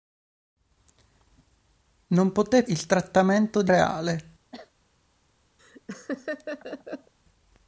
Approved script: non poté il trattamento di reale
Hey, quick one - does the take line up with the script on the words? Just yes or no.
yes